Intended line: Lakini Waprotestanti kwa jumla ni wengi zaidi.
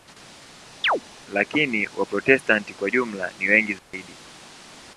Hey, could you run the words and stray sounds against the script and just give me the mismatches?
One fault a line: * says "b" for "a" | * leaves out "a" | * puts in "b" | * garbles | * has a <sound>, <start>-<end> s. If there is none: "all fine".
* has a chirp, 0.8-1.0 s
* has a dropout, 3.8-3.9 s